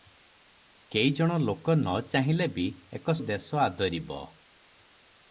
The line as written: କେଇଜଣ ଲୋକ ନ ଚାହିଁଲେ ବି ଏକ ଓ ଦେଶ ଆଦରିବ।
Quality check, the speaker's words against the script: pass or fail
pass